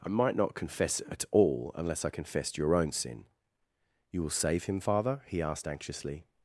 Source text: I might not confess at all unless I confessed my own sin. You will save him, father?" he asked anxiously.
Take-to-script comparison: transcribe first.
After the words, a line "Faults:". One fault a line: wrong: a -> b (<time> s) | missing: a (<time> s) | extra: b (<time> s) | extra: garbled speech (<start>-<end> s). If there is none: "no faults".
I might not confess at all unless I confessed your own sin. You will save him, father?" he asked anxiously.
Faults:
wrong: my -> your (2.6 s)